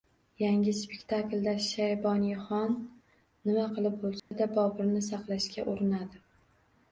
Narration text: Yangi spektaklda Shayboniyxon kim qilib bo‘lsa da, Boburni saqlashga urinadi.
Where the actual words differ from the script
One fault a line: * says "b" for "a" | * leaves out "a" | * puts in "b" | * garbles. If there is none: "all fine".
* says "nima" for "kim"